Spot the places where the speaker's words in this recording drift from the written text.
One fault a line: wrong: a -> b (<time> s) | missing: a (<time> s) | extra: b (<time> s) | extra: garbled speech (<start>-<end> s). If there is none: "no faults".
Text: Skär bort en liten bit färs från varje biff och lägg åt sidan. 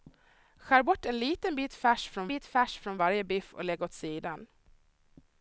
extra: bit färs från (2.3 s)